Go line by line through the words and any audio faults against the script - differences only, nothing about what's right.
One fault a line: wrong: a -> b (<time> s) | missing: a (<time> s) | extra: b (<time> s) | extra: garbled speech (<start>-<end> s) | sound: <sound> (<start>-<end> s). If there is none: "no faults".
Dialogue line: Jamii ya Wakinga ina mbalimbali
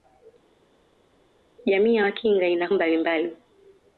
no faults